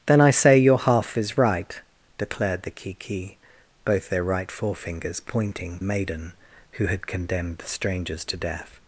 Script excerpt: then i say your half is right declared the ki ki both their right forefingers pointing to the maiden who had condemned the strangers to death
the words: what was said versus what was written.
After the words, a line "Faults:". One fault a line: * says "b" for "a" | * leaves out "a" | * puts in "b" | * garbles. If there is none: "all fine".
then i say your half is right declared the ki ki both their right forefingers pointing maiden who had condemned the strangers to death
Faults:
* leaves out "to the"